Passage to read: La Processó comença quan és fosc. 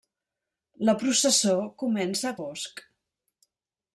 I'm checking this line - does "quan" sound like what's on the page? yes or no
no